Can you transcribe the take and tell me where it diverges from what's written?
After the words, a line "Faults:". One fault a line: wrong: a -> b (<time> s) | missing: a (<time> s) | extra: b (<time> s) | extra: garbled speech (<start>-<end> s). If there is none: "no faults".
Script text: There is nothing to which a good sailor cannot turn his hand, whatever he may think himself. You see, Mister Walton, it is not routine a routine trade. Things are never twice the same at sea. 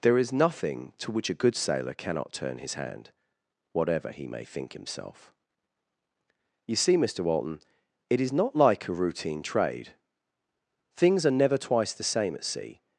There is nothing to which a good sailor cannot turn his hand, whatever he may think himself. You see, Mister Walton, it is not like a routine trade. Things are never twice the same at sea.
Faults:
wrong: routine -> like (8.6 s)